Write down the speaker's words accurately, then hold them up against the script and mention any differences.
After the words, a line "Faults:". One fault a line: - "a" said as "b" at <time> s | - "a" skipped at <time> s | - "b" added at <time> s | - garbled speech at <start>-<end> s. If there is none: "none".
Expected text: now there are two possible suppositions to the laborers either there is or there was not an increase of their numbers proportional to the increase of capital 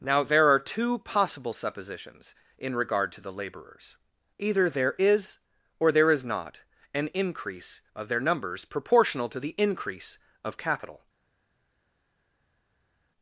now there are two possible suppositions in regard to the laborers either there is or there is not an increase of their numbers proportional to the increase of capital
Faults:
- "in regard" added at 2.6 s
- "was" said as "is" at 6.1 s